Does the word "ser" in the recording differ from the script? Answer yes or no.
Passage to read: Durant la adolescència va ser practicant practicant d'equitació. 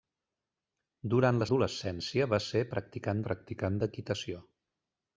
no